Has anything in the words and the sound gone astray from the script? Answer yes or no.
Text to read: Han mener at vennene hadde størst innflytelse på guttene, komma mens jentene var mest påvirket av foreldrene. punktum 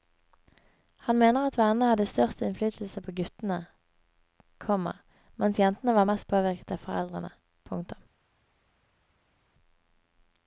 no